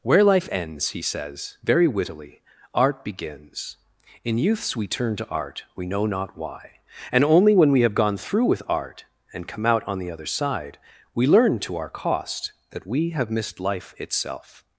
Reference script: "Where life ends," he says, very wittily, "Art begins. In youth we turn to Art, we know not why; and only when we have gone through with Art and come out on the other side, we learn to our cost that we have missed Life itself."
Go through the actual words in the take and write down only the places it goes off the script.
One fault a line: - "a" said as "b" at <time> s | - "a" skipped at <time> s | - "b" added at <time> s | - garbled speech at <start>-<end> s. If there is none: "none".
- "youth" said as "youths" at 4.4 s